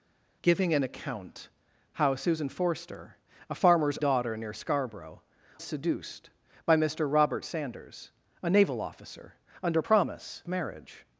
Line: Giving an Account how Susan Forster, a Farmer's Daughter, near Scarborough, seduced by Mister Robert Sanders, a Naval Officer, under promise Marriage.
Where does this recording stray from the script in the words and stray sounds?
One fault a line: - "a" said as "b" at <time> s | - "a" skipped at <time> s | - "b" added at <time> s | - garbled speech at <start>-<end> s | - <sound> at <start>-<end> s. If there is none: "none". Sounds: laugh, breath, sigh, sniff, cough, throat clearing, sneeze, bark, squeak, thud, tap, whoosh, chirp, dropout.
none